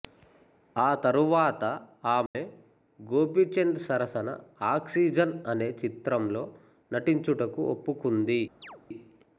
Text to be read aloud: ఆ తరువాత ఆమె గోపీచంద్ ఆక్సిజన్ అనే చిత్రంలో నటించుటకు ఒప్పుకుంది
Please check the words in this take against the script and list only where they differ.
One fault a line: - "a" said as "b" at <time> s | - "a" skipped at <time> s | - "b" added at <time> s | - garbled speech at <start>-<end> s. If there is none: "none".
- "సరసన" added at 3.8 s